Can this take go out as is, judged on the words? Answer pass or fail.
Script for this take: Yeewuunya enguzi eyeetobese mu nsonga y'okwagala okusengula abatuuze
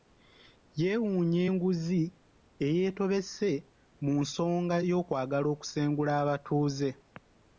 pass